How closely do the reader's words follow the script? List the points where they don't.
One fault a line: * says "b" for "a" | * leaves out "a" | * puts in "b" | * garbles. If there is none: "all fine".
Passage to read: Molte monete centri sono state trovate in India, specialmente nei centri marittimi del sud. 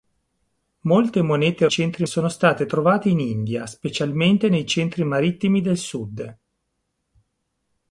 all fine